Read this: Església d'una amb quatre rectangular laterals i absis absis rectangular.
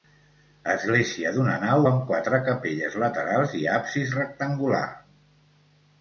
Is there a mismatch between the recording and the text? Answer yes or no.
yes